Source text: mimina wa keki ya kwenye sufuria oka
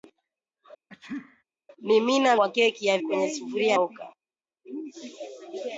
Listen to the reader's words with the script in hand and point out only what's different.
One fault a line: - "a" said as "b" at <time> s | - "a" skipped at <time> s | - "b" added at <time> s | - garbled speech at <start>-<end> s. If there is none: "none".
none